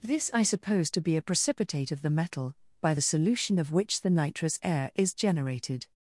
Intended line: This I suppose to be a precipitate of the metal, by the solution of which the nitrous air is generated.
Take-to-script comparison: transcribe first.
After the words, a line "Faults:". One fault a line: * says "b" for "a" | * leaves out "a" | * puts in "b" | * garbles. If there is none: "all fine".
This I suppose to be a precipitate of the metal, by the solution of which the nitrous air is generated.
Faults:
all fine